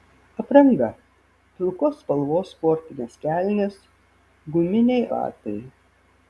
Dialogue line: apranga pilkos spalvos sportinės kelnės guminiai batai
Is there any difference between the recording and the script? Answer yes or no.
no